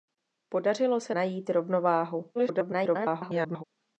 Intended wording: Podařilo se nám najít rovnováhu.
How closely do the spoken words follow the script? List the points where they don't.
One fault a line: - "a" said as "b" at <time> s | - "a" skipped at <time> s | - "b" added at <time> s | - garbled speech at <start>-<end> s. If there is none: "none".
- "nám" skipped at 1.1 s
- garbled speech at 2.3-3.6 s